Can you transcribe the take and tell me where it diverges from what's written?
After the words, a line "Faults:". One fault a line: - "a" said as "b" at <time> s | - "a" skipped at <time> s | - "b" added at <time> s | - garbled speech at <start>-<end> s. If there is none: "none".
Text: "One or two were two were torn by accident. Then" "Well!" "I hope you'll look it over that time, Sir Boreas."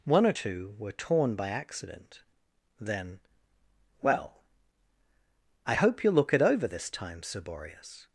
"One or two were torn by accident. Then" "Well!" "I hope you'll look it over this time, Sir Boreas."
Faults:
- "two were" skipped at 0.9 s
- "that" said as "this" at 6.7 s